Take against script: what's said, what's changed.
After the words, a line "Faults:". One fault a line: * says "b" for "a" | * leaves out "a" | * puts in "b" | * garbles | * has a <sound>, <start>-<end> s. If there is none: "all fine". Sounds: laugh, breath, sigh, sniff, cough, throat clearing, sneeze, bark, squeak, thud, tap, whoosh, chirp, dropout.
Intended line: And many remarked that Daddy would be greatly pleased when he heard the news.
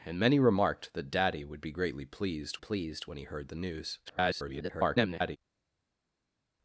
And many remarked that Daddy would be greatly pleased pleased when he heard the news. [garbled]
Faults:
* puts in "pleased"
* garbles